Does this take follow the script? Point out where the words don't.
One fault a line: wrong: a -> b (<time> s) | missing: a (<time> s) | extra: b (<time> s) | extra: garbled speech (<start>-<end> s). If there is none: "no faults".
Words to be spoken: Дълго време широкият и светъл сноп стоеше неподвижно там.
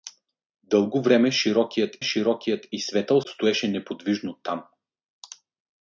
extra: широкият (2.0 s)
missing: сноп (3.2 s)